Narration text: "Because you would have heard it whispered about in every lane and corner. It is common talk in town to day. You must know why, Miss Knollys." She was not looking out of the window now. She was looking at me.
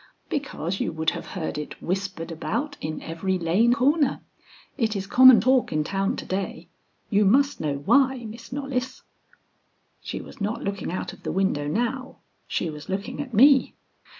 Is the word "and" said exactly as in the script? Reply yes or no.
no